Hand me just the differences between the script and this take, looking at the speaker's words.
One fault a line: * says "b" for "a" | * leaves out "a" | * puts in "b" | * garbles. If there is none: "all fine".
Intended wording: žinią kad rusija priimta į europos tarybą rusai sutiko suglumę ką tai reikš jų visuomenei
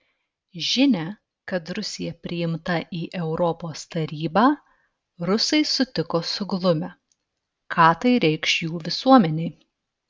all fine